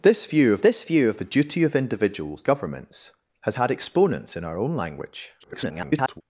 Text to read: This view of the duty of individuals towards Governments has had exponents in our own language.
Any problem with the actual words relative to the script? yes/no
yes